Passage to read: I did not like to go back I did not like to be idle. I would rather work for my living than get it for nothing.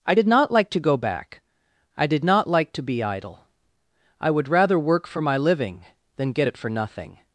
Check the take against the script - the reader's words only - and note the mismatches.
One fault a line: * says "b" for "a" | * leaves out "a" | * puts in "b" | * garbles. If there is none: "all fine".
all fine